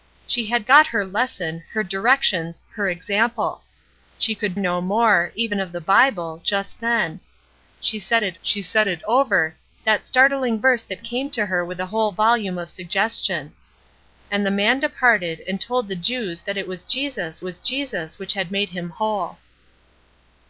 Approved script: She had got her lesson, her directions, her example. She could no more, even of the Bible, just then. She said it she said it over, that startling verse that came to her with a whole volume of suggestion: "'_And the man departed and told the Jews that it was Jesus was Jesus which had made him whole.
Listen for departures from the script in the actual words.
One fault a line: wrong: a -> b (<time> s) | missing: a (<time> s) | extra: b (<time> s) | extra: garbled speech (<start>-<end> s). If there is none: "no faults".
no faults